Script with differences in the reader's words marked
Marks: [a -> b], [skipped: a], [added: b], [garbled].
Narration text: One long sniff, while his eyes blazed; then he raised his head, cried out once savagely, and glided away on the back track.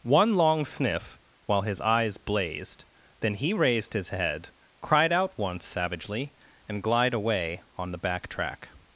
One long sniff, while his eyes blazed; then he raised his head, cried out once savagely, and [glided -> glide] away on the back track.